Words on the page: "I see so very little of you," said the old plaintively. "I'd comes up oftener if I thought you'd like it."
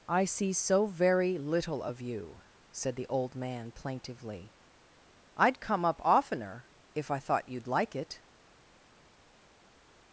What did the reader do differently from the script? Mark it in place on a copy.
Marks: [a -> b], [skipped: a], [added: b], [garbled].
"I see so very little of you," said the old [added: man] plaintively. "I'd [comes -> come] up oftener if I thought you'd like it."